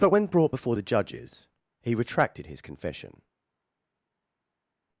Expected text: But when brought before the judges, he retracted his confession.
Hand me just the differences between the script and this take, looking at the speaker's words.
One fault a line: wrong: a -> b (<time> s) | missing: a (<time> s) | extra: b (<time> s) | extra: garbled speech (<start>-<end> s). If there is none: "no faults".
no faults